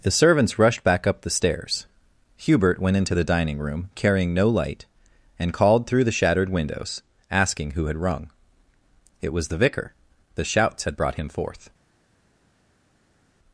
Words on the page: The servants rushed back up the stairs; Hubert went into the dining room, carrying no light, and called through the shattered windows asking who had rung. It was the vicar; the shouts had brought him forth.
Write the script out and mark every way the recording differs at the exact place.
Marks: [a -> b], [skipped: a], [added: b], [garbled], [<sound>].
The servants rushed back up the stairs; Hubert went into the dining room, carrying no light, and called through the shattered windows asking who had rung. It was the vicar; the shouts had brought him forth.